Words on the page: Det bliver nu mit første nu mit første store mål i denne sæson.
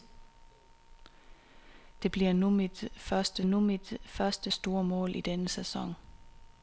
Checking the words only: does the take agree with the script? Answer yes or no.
yes